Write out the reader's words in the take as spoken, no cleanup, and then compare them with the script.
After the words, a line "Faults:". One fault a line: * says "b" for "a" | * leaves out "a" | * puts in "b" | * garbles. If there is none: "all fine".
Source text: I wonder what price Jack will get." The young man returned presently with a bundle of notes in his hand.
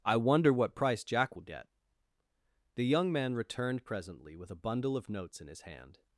I wonder what price Jack will get." The young man returned presently with a bundle of notes in his hand.
Faults:
all fine